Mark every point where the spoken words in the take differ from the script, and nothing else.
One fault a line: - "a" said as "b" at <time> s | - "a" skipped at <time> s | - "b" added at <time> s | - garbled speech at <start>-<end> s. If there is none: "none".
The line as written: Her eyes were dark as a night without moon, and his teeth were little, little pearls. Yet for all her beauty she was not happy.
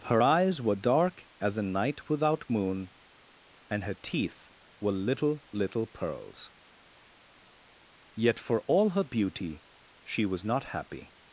- "his" said as "her" at 3.8 s